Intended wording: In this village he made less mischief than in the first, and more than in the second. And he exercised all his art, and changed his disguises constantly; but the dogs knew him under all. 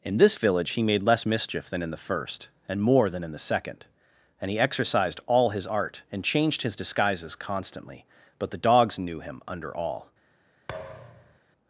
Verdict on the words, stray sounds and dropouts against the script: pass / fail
fail